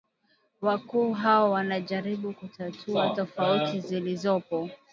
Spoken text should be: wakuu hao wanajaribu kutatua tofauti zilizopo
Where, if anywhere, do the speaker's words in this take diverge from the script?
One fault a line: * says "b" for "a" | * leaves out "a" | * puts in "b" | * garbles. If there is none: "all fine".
all fine